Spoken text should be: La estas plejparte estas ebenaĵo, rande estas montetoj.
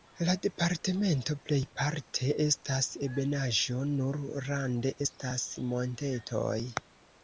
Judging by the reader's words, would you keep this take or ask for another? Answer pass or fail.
fail